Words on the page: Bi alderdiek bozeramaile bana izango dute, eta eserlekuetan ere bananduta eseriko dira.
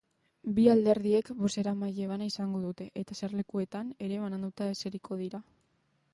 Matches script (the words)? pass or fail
pass